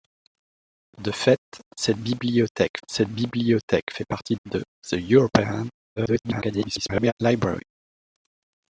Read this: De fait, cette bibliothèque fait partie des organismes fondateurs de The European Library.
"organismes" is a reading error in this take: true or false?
true